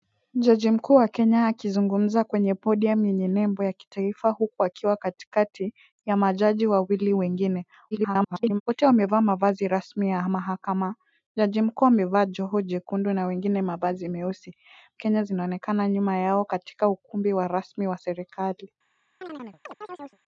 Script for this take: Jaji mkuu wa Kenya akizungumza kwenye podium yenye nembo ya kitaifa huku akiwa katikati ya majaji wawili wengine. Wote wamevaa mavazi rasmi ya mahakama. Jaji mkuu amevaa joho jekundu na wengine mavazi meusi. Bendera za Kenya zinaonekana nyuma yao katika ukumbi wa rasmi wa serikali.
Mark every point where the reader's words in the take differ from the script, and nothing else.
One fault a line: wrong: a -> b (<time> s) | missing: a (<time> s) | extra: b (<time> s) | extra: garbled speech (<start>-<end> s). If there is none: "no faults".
extra: garbled speech (7.9-8.6 s)
missing: Bendera za (14.6 s)